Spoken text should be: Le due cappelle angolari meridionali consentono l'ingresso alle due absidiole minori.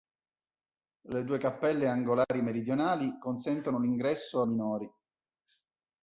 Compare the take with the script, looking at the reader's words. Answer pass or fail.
fail